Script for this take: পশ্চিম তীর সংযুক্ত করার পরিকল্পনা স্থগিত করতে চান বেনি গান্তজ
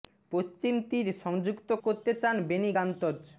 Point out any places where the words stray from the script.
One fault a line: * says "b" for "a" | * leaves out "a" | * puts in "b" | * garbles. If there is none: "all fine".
* leaves out "করার পরিকল্পনা স্থগিত"